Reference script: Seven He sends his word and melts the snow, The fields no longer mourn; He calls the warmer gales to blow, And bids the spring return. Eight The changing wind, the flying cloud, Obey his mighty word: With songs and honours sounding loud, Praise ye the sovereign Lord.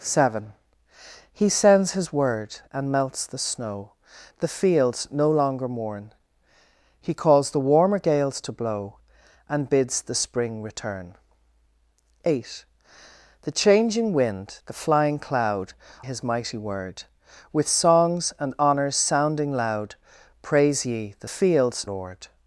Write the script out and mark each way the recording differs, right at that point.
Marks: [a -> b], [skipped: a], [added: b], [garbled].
Seven He sends his word and melts the snow, The fields no longer mourn; He calls the warmer gales to blow, And bids the spring return. Eight The changing wind, the flying cloud, [skipped: Obey] his mighty word: With songs and honours sounding loud, Praise ye the [sovereign -> fields] Lord.